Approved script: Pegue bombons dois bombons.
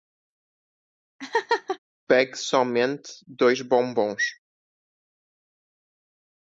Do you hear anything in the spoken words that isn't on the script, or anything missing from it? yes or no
yes